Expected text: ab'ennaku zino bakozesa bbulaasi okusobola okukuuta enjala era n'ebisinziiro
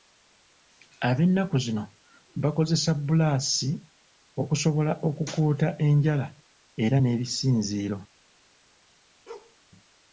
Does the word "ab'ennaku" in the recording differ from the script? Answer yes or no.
no